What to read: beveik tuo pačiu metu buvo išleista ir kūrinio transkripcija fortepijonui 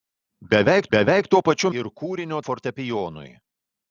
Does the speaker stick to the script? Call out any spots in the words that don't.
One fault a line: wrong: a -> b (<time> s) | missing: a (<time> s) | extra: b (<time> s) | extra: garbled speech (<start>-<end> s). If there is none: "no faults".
extra: beveik (0.9 s)
missing: metu buvo išleista (1.7 s)
missing: transkripcija (2.4 s)